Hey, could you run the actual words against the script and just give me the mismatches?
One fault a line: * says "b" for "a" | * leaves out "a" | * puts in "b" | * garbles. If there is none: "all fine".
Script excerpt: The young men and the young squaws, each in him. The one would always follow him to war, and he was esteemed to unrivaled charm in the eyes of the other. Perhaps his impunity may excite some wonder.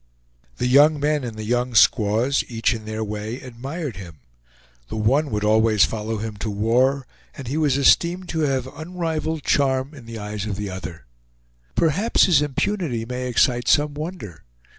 * puts in "their way admired"
* puts in "have"